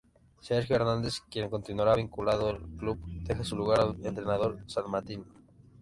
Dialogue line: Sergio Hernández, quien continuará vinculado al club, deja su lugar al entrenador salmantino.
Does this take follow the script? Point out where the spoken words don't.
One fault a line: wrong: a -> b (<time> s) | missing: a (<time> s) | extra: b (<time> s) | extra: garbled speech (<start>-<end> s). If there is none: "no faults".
no faults